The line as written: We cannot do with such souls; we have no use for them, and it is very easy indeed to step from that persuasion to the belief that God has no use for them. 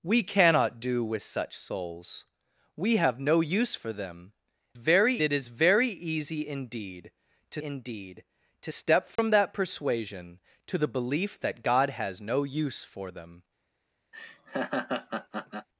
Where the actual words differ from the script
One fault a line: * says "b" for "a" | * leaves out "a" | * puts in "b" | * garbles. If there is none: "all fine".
* says "very" for "and"
* puts in "indeed to"